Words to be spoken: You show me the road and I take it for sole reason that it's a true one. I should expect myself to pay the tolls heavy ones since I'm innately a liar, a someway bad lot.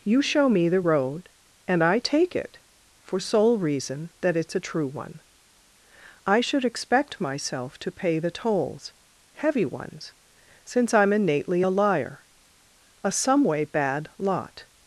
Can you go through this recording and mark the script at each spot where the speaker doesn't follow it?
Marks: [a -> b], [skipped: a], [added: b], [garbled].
You show me the road and I take it for sole reason that it's a true one. I should expect myself to pay the tolls heavy ones since I'm innately a liar, a someway bad lot.